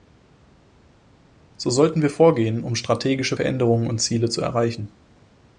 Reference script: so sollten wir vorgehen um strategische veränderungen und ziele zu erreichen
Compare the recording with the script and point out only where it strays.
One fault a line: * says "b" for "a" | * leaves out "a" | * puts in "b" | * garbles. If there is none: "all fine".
all fine